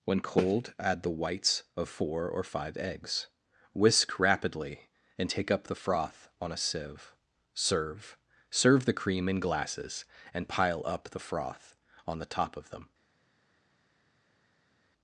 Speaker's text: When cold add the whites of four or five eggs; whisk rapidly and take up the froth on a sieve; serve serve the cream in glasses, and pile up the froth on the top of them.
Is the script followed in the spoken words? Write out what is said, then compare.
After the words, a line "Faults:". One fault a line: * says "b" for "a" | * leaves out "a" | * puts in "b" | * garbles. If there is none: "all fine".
When cold add the whites of four or five eggs; whisk rapidly and take up the froth on a sieve; serve serve the cream in glasses, and pile up the froth on the top of them.
Faults:
all fine